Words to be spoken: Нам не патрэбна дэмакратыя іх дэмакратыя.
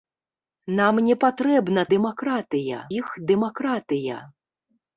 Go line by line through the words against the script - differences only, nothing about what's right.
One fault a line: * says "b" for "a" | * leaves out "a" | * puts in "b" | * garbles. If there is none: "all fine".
all fine